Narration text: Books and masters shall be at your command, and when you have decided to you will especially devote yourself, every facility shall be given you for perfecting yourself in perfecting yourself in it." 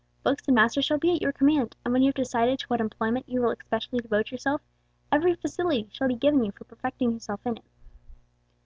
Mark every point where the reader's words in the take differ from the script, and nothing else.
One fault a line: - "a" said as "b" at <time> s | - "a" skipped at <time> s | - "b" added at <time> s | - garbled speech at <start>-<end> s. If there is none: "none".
- "what employment" added at 2.7 s
- "perfecting yourself in" skipped at 7.6 s